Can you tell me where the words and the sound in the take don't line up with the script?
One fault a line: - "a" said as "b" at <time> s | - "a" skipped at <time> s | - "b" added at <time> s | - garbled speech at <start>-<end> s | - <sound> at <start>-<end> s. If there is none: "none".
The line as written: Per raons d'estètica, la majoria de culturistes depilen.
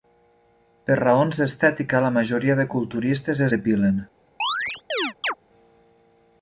- chirp at 4.4-5.3 s